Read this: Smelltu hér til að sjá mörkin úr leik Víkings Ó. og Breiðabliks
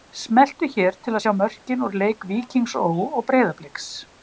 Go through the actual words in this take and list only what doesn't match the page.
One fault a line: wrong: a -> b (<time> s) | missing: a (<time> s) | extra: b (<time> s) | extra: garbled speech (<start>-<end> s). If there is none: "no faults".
no faults